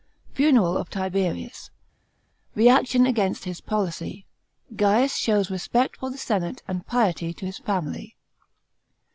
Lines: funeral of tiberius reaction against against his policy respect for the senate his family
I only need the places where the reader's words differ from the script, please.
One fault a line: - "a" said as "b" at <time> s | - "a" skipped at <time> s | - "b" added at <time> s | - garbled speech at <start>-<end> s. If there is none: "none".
- "against" skipped at 3.4 s
- "gaius shows" added at 4.7 s
- "and piety to" added at 6.7 s